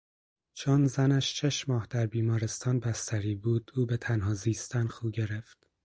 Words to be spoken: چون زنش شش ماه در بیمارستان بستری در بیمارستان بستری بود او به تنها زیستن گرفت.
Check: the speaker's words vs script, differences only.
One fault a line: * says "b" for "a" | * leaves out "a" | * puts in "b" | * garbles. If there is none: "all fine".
* leaves out "در بیمارستان بستری"
* puts in "خو"